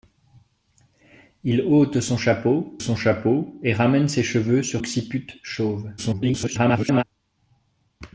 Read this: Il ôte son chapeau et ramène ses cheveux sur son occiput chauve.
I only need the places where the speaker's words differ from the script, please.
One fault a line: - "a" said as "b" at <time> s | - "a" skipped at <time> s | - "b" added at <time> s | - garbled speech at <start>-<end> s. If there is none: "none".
- "son chapeau" added at 2.8 s
- "son" skipped at 4.8 s
- garbled speech at 6.0-7.0 s